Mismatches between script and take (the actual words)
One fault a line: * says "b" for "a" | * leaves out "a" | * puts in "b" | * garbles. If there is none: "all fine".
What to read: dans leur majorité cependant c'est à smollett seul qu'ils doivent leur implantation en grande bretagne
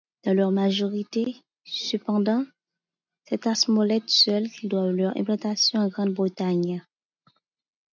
all fine